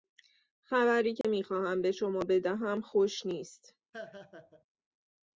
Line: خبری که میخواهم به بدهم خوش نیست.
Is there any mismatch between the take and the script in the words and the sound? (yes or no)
yes